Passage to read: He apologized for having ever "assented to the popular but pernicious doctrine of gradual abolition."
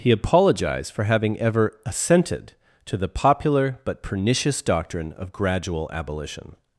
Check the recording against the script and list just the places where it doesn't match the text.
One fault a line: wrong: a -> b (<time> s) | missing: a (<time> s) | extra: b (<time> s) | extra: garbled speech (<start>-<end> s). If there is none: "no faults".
no faults